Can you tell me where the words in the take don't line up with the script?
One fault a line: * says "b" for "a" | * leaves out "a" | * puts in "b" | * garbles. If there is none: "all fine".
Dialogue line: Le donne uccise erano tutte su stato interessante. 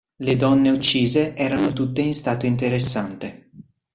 * says "in" for "su"